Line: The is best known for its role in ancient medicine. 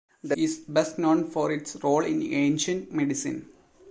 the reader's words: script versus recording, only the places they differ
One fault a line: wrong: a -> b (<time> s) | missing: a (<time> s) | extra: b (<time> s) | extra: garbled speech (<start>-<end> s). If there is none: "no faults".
no faults